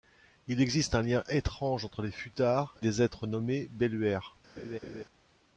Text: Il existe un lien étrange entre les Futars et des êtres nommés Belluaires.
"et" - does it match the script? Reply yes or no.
no